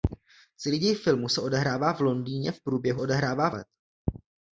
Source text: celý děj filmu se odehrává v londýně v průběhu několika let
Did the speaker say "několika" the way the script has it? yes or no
no